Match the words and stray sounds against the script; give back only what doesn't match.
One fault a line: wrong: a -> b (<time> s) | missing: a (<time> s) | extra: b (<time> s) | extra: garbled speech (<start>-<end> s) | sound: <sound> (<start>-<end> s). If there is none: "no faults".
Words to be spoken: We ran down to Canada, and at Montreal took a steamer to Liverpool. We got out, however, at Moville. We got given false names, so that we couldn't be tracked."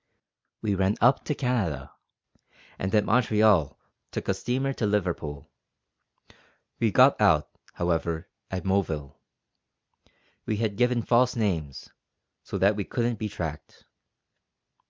wrong: down -> up (1.0 s)
wrong: got -> had (10.6 s)